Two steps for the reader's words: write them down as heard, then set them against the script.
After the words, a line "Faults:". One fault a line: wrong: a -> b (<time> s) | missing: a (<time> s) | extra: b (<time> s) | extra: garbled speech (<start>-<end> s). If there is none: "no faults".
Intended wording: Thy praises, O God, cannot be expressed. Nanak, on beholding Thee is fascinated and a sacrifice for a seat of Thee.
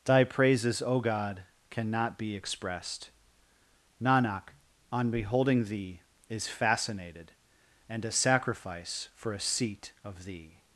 Thy praises, O God, cannot be expressed. Nanak, on beholding Thee is fascinated and a sacrifice for a seat of Thee.
Faults:
no faults